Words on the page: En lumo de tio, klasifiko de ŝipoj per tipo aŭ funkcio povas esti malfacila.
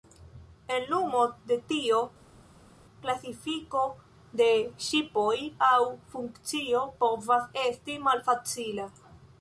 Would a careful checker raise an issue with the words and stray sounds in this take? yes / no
yes